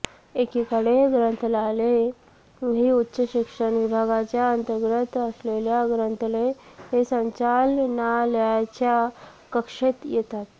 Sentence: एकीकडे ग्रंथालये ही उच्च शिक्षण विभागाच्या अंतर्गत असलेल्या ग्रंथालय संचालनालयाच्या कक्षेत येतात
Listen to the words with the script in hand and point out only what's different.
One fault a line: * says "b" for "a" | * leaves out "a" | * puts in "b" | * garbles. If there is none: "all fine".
all fine